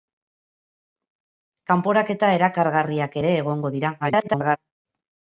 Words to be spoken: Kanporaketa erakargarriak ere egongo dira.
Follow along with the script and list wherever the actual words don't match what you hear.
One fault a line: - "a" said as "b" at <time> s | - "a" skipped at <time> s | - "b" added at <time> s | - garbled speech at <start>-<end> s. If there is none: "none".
- garbled speech at 4.0-4.6 s